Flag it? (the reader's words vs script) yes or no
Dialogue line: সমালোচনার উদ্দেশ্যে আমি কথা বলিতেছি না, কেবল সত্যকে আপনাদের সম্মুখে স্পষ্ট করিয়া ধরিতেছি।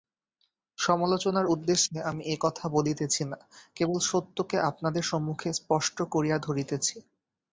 yes